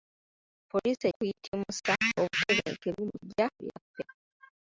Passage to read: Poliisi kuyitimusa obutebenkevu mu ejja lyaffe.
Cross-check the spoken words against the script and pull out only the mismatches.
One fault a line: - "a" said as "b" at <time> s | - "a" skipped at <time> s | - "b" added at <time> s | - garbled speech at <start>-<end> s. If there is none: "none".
none